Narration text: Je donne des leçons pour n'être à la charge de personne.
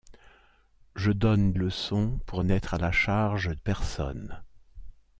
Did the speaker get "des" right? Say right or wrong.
wrong